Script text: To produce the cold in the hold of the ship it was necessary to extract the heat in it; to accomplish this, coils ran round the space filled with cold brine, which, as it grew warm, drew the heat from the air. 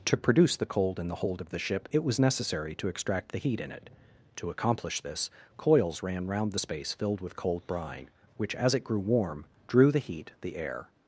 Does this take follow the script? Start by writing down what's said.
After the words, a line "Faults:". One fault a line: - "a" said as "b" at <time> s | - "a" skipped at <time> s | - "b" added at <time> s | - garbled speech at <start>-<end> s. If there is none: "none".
To produce the cold in the hold of the ship it was necessary to extract the heat in it; to accomplish this, coils ran round the space filled with cold brine, which, as it grew warm, drew the heat the air.
Faults:
- "from" skipped at 10.3 s